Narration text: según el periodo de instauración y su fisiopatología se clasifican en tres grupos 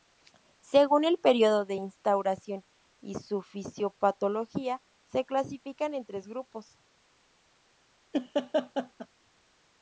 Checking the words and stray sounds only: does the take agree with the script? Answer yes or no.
no